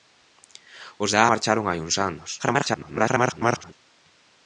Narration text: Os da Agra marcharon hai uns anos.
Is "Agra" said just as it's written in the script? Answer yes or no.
no